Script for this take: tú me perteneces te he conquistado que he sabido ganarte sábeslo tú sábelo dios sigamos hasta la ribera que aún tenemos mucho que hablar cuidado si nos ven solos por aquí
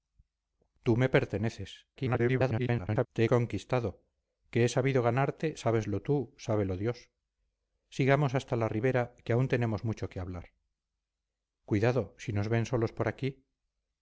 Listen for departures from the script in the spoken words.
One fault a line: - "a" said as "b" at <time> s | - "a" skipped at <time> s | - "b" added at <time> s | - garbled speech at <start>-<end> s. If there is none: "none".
- garbled speech at 2.0-3.1 s